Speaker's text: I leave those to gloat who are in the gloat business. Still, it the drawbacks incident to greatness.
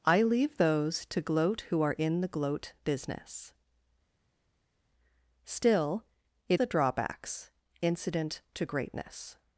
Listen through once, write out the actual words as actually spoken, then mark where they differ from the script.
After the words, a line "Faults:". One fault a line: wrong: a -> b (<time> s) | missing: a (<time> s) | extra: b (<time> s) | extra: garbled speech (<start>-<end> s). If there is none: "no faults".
I leave those to gloat who are in the gloat business. Still, it the drawbacks incident to greatness.
Faults:
no faults